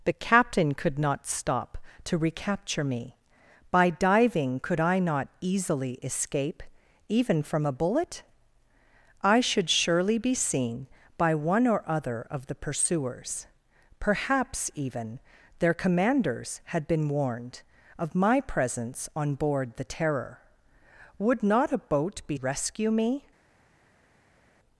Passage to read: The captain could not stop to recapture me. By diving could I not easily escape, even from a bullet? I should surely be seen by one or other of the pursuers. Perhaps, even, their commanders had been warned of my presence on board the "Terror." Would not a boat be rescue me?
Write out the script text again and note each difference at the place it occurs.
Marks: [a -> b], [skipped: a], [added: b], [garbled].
The captain could not stop to recapture me. By diving could I not easily escape, even from a bullet? I should surely be seen by one or other of the pursuers. Perhaps, even, their commanders had been warned of my presence on board the "Terror." Would not a boat be rescue me?